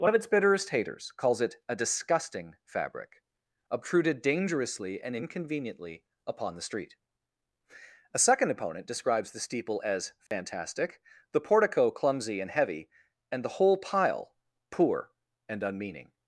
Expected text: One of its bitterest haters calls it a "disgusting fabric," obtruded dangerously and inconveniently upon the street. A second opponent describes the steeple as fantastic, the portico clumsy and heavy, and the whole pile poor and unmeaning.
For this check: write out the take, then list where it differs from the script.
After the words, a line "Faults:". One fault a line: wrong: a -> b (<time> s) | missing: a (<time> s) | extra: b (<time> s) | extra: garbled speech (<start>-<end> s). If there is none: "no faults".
One of its bitterest haters calls it a "disgusting fabric," obtruded dangerously and inconveniently upon the street. A second opponent describes the steeple as fantastic, the portico clumsy and heavy, and the whole pile poor and unmeaning.
Faults:
no faults